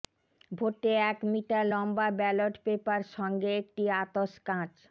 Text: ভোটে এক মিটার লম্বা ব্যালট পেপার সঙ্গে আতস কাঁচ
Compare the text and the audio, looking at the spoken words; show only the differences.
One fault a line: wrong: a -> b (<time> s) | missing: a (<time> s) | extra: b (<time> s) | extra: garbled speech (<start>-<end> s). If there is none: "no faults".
extra: একটি (3.6 s)